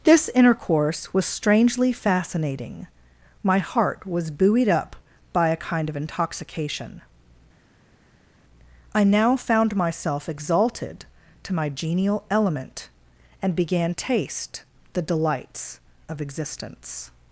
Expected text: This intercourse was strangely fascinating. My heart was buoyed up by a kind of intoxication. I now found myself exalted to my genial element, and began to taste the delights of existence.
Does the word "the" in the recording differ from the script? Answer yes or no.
no